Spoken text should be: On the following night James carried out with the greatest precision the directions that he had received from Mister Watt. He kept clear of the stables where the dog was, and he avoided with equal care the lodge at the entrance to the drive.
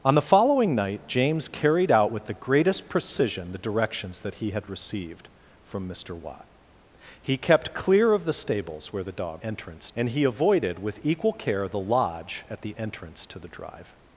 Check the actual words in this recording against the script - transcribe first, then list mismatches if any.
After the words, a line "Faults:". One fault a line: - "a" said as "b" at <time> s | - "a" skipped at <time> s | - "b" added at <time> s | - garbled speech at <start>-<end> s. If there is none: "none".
On the following night James carried out with the greatest precision the directions that he had received from Mister Watt. He kept clear of the stables where the dog entrance, and he avoided with equal care the lodge at the entrance to the drive.
Faults:
- "was" said as "entrance" at 9.4 s